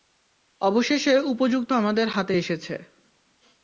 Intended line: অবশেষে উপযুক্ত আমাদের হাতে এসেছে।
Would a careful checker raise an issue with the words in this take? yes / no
no